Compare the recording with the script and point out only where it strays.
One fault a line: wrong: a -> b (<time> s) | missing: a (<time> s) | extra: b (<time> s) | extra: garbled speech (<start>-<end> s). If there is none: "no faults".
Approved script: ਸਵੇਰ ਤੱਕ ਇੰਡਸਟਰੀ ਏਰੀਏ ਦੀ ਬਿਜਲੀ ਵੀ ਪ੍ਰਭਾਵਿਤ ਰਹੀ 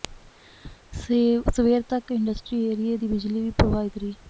no faults